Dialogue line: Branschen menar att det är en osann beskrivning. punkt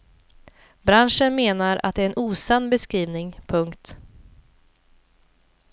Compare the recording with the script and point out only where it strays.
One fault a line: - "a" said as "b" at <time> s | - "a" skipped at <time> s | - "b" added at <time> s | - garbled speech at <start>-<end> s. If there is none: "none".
none